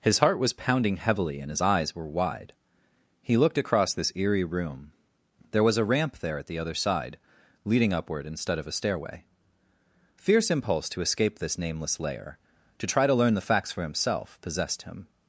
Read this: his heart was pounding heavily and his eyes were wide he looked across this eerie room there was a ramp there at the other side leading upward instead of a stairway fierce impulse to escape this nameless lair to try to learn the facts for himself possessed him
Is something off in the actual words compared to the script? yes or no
no